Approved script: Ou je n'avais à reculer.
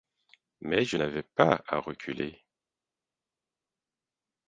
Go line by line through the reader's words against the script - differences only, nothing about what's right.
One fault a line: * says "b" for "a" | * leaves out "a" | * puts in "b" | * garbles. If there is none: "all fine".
* says "Mais" for "Ou"
* puts in "pas"